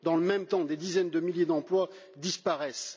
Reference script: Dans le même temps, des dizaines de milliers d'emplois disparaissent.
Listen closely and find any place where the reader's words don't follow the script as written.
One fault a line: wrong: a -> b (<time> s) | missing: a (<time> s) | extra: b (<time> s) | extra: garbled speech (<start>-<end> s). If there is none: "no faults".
no faults